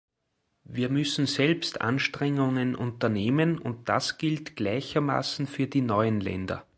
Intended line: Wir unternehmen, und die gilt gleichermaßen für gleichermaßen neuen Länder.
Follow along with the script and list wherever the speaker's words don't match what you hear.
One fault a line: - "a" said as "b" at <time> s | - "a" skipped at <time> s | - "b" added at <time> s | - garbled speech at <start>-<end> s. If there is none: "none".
- "müssen selbst Anstrengungen" added at 0.9 s
- "die" said as "das" at 3.9 s
- "gleichermaßen" said as "die" at 5.7 s